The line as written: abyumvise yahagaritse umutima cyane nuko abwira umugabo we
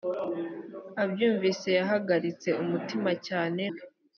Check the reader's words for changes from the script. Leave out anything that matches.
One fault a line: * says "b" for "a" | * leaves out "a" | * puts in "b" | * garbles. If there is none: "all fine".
* leaves out "nuko abwira umugabo"